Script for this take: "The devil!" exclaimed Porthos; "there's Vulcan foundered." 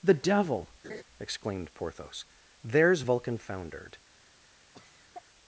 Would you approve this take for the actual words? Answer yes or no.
yes